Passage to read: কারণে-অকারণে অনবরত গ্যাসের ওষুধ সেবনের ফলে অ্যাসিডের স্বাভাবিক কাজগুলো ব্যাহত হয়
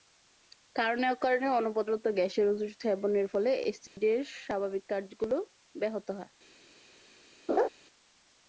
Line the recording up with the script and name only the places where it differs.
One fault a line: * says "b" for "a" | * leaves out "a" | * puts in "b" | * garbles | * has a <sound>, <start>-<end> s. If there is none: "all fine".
* has a dropout, 3.9-4.0 s
* has a laugh, 7.5-7.7 s